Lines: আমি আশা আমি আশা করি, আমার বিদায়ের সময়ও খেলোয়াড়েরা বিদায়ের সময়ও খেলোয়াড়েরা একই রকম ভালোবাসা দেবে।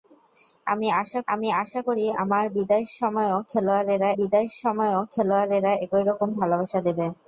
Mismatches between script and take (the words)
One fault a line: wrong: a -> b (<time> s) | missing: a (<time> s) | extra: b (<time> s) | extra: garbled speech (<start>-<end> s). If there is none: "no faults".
no faults